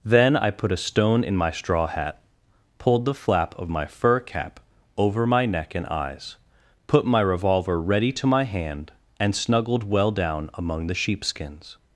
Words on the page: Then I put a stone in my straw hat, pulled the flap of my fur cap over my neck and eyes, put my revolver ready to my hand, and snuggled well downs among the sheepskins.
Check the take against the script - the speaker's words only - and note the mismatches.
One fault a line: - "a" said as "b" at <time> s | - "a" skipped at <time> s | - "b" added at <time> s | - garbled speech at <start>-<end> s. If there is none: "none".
- "downs" said as "down" at 10.1 s